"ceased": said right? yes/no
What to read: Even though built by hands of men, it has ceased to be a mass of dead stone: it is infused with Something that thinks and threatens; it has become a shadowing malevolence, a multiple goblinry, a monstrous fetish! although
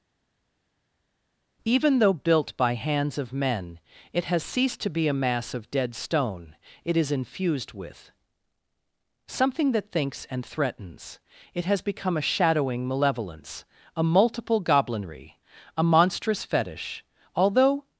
yes